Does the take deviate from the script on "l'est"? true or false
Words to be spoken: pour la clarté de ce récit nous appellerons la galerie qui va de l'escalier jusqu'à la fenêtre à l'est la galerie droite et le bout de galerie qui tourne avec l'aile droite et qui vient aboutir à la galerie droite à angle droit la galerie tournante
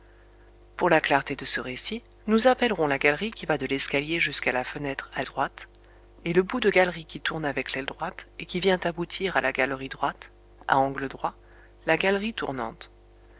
true